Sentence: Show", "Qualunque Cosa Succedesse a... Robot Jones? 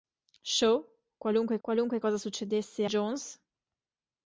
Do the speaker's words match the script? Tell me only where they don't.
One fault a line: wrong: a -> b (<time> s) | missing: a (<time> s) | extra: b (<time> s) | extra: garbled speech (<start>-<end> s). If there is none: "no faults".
extra: qualunque (1.6 s)
missing: a Robot (2.9 s)